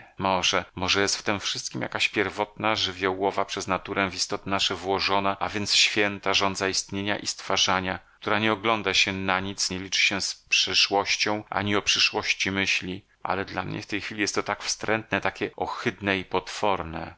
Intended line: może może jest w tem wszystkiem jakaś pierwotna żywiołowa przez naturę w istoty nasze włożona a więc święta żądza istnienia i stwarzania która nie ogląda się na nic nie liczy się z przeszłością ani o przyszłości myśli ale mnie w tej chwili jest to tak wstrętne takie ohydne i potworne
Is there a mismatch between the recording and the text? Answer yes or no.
yes